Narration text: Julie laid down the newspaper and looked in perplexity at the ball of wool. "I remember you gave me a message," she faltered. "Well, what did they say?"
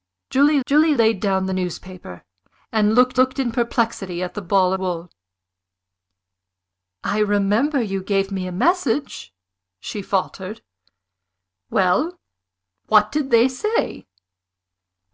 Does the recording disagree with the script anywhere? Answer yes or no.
yes